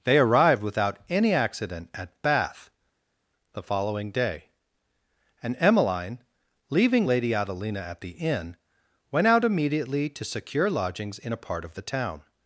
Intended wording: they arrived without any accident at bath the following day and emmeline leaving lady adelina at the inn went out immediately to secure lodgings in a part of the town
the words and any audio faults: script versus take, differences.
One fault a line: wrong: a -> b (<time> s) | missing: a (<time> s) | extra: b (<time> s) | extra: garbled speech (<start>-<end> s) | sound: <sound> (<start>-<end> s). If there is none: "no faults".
no faults